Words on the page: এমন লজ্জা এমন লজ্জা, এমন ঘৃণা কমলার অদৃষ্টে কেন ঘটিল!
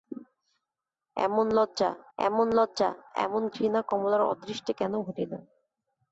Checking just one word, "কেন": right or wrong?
right